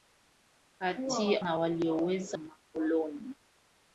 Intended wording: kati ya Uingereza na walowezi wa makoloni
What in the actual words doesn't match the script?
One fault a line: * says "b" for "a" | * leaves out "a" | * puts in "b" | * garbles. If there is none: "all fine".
* leaves out "Uingereza"
* leaves out "wa"